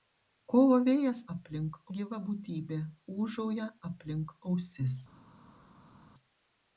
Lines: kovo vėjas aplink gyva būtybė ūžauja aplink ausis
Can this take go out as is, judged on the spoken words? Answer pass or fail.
pass